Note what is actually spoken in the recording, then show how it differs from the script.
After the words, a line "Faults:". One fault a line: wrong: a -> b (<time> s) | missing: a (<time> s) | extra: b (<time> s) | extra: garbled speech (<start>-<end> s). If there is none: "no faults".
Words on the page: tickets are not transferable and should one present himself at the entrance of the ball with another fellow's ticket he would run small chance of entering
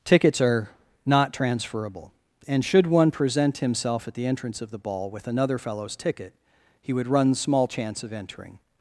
tickets are not transferable and should one present himself at the entrance of the ball with another fellow's ticket he would run small chance of entering
Faults:
no faults